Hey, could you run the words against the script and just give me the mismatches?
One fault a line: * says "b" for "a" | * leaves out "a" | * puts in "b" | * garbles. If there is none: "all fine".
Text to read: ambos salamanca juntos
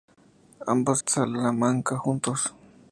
all fine